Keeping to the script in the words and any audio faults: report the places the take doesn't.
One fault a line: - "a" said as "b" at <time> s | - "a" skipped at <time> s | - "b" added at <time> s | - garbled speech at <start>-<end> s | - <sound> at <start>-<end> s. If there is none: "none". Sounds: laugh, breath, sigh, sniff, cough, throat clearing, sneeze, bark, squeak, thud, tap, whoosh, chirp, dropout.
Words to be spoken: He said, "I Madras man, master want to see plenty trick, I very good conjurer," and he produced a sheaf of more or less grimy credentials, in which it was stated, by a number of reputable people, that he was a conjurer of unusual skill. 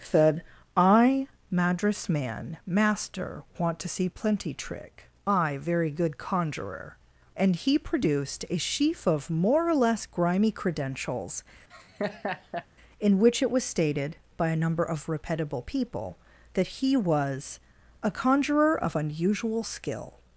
- "He" skipped at 0.0 s
- laugh at 11.7-12.7 s